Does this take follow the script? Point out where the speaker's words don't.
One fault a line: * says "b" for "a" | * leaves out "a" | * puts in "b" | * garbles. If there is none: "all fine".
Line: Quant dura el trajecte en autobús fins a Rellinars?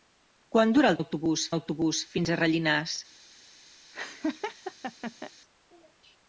* says "autobús" for "trajecte"